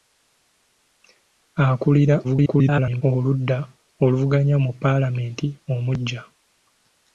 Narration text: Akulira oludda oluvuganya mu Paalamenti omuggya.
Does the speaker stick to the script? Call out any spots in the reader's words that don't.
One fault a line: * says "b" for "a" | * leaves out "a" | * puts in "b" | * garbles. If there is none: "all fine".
* garbles